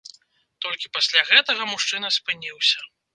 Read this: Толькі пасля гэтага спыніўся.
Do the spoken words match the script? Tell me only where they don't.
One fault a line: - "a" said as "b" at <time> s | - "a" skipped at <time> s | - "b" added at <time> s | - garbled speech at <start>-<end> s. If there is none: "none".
- "мужчына" added at 1.7 s